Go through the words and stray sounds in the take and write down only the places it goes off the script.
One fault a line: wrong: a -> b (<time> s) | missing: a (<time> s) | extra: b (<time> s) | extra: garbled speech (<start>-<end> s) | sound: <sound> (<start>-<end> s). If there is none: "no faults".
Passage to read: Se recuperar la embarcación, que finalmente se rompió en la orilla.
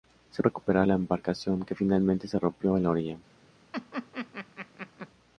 sound: laugh (3.7-5.1 s)